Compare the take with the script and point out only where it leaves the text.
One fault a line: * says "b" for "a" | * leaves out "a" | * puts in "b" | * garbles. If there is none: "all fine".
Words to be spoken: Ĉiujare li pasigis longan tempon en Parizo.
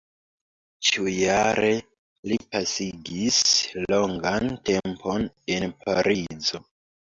all fine